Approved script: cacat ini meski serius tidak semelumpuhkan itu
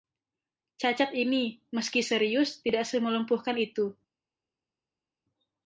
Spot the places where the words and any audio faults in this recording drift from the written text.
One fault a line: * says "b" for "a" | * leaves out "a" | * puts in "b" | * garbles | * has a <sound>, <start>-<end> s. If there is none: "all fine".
all fine